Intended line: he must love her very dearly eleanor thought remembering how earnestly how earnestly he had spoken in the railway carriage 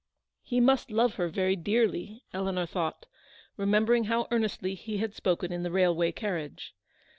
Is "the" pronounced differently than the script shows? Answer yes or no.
no